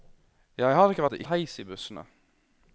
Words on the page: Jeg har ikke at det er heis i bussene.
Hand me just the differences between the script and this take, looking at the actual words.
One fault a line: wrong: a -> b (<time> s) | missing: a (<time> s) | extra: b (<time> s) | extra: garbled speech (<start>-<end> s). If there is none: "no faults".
no faults